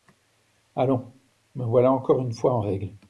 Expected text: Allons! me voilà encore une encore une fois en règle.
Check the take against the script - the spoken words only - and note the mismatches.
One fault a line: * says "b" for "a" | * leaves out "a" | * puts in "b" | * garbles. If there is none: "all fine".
* leaves out "encore une"